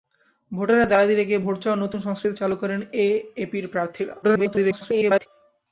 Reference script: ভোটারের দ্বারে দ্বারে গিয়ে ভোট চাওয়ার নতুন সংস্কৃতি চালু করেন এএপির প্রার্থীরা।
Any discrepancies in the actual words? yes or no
yes